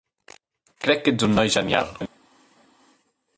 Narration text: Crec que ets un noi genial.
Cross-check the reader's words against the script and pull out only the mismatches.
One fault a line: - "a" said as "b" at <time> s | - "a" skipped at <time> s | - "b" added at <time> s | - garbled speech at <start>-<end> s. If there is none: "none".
none